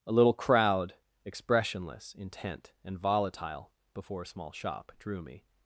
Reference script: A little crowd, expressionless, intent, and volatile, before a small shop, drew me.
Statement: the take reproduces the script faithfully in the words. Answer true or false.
true